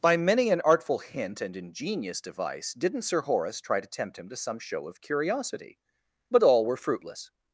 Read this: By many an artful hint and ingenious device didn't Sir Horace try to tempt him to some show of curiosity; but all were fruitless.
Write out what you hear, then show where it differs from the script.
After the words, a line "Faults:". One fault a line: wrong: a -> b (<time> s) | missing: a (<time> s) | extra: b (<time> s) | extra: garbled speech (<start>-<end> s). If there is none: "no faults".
By many an artful hint and ingenious device didn't Sir Horace try to tempt him to some show of curiosity; but all were fruitless.
Faults:
no faults